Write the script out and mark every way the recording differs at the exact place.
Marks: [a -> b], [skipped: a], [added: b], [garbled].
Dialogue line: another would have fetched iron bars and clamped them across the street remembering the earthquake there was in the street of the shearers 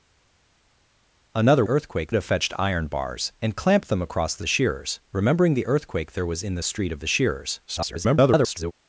another [would -> earthquake] have fetched iron bars and clamped them across the [street -> shearers] remembering the earthquake there was in the street of the shearers [garbled]